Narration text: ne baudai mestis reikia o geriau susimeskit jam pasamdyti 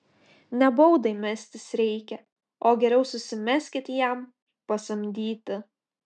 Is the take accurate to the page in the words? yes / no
yes